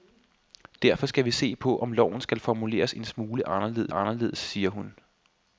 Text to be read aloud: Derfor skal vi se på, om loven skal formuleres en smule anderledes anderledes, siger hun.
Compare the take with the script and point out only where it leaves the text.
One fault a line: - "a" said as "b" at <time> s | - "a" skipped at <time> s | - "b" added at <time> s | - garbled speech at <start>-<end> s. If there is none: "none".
none